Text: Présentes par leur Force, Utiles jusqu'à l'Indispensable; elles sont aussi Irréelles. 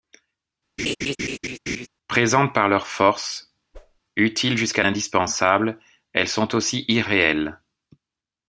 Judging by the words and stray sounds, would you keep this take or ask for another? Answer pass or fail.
fail